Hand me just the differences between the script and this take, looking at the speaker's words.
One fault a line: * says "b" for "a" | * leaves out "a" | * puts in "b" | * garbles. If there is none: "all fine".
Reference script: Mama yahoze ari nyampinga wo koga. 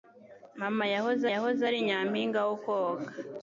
* puts in "yahoze"